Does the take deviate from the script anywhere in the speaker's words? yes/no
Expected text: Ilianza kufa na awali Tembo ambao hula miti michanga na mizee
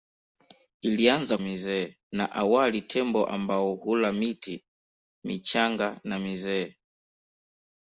yes